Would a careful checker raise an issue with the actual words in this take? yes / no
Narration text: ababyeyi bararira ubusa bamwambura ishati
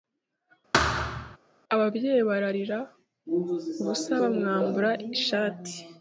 no